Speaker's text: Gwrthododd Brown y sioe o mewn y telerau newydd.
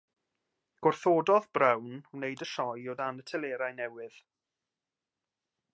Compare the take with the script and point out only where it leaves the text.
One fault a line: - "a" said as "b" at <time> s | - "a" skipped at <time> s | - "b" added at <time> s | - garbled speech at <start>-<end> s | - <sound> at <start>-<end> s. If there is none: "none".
- "wneud" added at 2.1 s
- "mewn" said as "dan" at 3.0 s